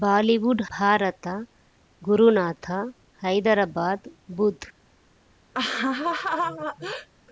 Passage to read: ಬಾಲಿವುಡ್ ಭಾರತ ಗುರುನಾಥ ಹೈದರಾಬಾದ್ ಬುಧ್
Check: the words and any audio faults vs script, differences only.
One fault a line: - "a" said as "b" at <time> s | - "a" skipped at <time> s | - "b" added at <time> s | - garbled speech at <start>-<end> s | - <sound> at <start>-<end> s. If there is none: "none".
- laugh at 5.5-7.1 s